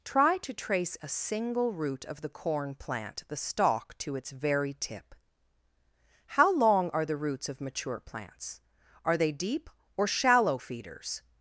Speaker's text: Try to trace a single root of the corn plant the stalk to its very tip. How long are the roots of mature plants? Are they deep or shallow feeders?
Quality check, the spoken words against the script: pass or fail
pass